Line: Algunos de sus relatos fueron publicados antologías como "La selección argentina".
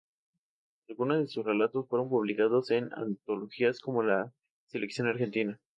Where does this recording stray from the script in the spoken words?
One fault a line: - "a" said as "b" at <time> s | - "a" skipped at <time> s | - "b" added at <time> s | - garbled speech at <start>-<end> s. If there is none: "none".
- "en" added at 2.7 s